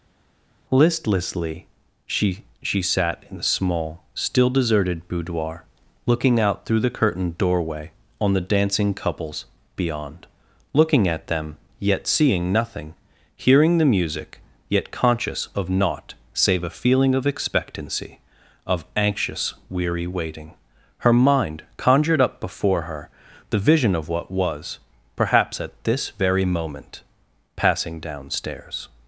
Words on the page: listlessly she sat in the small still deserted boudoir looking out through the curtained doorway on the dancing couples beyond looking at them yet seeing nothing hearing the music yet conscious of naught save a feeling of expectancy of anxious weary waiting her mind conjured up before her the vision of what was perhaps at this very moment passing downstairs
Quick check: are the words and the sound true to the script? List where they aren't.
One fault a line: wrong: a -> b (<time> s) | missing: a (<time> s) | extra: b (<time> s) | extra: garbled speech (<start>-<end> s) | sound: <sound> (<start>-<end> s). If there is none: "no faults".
extra: she (2.6 s)